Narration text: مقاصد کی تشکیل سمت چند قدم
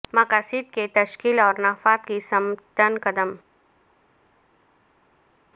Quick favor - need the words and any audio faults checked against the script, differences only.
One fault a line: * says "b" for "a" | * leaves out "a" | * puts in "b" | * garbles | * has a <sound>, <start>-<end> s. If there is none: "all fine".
* puts in "اور نفاذ کی"